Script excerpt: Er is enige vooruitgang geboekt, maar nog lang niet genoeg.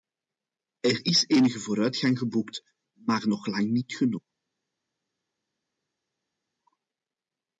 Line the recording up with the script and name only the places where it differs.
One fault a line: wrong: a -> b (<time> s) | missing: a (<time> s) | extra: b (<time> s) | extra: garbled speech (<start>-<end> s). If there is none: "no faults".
no faults